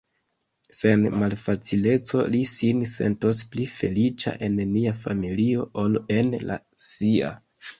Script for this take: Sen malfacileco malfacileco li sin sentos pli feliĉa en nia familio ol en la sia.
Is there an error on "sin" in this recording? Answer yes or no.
no